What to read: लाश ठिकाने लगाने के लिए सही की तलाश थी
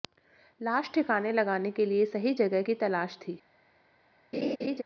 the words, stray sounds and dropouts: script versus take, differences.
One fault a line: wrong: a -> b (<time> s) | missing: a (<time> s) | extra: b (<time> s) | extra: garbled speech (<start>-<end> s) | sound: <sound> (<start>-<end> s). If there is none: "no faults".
extra: जगह (2.3 s)
sound: laugh (4.3-4.8 s)